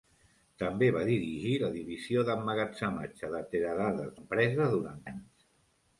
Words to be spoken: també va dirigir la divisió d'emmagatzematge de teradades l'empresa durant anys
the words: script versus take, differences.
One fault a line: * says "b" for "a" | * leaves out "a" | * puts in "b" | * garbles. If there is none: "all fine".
all fine